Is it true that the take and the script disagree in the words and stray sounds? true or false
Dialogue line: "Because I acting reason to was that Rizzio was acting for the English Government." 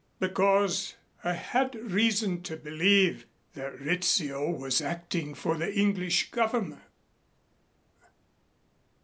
true